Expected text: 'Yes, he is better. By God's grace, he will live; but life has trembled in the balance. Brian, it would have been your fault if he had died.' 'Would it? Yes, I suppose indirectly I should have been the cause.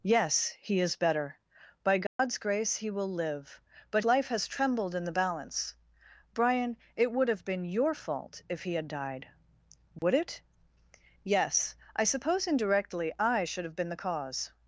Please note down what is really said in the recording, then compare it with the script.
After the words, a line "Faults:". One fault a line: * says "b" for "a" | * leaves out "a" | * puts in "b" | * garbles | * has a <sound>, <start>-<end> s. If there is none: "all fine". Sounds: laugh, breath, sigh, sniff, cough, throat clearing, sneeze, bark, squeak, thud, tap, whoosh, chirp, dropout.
'Yes, he is better. By God's grace, he will live; but life has trembled in the balance. Brian, it would have been your fault if he had died.' 'Would it? Yes, I suppose indirectly I should have been the cause.
Faults:
* has a dropout, 2.1-2.2 s
* has a dropout, 10.0-10.0 s